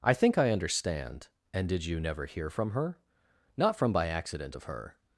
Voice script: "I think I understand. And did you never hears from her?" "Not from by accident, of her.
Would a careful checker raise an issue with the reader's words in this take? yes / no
yes